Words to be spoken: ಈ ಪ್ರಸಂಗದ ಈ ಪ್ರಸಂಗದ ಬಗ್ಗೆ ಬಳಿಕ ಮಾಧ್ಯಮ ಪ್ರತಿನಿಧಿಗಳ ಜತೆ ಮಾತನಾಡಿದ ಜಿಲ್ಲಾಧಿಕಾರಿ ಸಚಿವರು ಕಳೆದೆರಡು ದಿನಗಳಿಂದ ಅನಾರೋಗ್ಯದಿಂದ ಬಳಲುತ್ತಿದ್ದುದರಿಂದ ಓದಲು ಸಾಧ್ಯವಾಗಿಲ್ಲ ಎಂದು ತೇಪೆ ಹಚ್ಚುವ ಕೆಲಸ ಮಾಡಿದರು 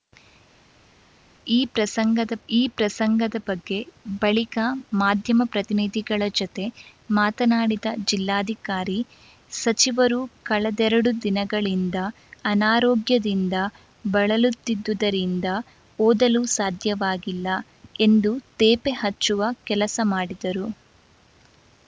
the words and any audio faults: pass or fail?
pass